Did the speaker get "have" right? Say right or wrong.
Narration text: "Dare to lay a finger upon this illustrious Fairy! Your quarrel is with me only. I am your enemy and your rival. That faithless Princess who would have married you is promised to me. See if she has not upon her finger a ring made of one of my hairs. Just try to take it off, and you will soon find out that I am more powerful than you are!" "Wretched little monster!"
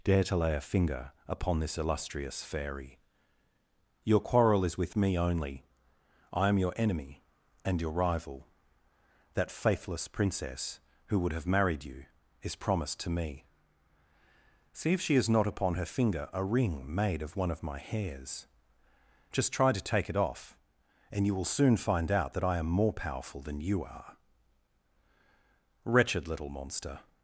right